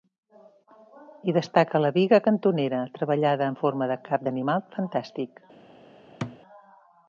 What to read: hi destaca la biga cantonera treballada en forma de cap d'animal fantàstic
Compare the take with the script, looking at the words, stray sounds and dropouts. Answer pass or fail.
fail